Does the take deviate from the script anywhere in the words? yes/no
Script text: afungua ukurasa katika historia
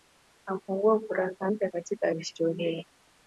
yes